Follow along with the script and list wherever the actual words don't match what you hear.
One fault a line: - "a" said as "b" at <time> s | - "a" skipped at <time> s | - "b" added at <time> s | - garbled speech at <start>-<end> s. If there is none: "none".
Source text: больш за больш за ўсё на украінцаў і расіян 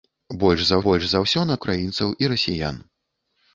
none